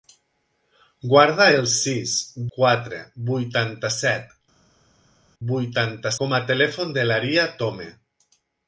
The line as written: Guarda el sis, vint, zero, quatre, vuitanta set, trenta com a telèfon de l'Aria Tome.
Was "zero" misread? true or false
true